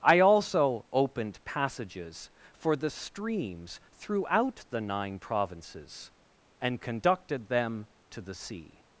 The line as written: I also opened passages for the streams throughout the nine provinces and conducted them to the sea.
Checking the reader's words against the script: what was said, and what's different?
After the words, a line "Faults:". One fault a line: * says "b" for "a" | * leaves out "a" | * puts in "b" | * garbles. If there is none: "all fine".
I also opened passages for the streams throughout the nine provinces and conducted them to the sea.
Faults:
all fine